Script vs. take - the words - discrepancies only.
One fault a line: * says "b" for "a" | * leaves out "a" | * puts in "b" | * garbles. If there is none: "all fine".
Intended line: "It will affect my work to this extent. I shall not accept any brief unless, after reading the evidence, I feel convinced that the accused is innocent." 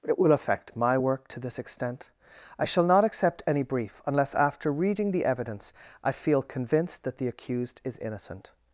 all fine